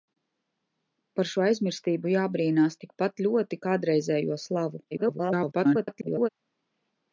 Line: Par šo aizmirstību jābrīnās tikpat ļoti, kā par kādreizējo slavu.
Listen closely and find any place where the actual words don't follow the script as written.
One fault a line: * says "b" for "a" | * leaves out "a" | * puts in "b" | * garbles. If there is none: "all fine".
* leaves out "kā par"
* garbles